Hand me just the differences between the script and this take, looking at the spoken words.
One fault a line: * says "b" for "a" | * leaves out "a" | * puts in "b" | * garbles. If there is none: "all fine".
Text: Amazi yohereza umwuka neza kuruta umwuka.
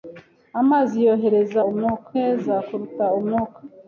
all fine